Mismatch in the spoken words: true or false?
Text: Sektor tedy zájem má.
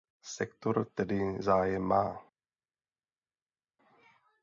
false